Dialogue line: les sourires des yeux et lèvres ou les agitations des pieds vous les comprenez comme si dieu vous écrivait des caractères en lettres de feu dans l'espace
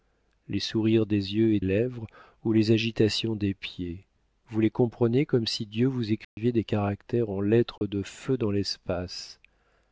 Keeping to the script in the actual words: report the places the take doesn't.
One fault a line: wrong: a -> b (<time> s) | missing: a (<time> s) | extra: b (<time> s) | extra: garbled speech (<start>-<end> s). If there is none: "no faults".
no faults